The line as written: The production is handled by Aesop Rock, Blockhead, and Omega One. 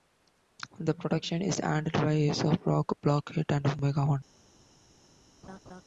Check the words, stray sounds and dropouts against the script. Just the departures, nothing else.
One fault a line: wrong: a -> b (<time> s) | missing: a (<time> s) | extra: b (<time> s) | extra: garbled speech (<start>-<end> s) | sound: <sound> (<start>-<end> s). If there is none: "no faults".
sound: laugh (5.4-5.8 s)